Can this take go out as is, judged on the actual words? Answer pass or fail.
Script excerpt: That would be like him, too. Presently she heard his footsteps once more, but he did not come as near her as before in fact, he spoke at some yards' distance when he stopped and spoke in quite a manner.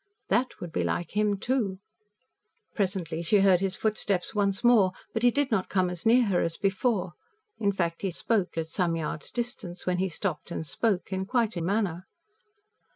pass